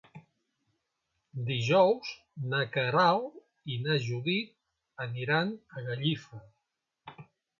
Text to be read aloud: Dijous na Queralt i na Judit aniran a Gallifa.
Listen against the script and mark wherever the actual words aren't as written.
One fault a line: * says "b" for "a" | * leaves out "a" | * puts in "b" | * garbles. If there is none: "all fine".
all fine